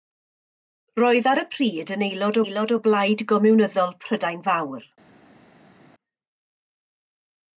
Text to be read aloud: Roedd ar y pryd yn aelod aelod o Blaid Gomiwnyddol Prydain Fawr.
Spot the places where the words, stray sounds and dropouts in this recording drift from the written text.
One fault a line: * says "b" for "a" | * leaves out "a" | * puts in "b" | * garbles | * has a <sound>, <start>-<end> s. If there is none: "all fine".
all fine